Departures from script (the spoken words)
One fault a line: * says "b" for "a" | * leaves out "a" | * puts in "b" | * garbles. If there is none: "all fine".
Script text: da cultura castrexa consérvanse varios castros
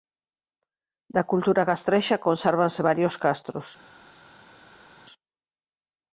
all fine